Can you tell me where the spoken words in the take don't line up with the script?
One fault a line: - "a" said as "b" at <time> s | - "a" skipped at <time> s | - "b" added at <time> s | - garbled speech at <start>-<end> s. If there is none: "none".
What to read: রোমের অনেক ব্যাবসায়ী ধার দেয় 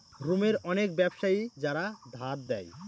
- "যারা" added at 1.6 s